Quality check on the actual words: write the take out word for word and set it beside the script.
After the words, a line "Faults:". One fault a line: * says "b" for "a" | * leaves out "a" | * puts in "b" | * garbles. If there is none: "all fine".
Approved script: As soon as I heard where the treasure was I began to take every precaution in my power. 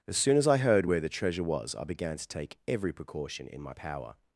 As soon as I heard where the treasure was I began to take every precaution in my power.
Faults:
all fine